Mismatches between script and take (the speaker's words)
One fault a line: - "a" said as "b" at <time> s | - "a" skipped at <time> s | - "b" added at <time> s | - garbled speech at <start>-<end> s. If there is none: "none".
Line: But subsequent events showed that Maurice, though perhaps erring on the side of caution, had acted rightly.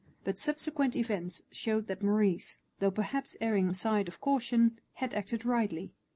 - "on" skipped at 3.7 s